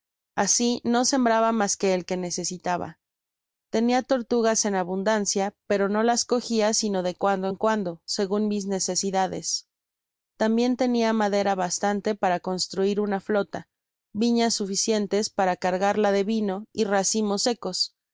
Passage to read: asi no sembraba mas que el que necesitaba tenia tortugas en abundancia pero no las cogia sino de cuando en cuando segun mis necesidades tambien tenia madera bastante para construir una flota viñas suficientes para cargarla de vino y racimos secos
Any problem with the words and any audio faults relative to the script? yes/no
no